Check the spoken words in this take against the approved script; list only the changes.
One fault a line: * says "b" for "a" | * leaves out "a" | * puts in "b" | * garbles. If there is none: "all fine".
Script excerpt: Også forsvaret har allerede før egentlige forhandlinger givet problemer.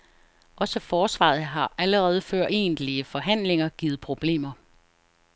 all fine